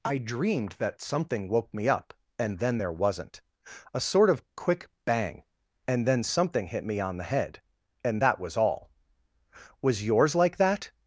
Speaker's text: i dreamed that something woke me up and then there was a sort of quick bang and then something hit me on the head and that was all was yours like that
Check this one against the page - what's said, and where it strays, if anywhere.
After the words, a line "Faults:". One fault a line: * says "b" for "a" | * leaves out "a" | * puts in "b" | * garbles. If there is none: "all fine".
i dreamed that something woke me up and then there wasn't a sort of quick bang and then something hit me on the head and that was all was yours like that
Faults:
* says "wasn't" for "was"